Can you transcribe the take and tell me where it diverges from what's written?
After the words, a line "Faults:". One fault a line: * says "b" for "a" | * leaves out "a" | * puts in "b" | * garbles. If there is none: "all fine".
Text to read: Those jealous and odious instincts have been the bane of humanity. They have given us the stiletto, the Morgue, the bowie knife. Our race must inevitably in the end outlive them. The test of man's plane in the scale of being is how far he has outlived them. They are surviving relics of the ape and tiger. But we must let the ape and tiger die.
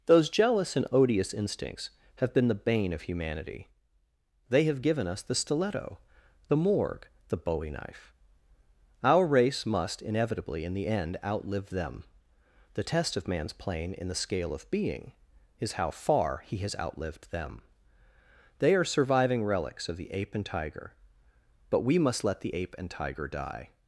Those jealous and odious instincts have been the bane of humanity. They have given us the stiletto, the Morgue, the bowie knife. Our race must inevitably in the end outlive them. The test of man's plane in the scale of being is how far he has outlived them. They are surviving relics of the ape and tiger. But we must let the ape and tiger die.
Faults:
all fine